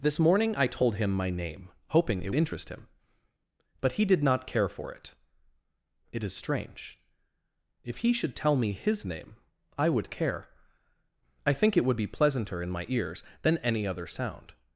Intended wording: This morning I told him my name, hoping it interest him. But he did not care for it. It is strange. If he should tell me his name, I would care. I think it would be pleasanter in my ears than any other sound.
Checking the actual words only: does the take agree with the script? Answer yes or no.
yes